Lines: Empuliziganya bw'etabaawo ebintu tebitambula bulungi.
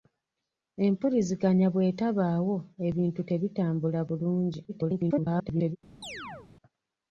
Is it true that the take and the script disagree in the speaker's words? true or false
true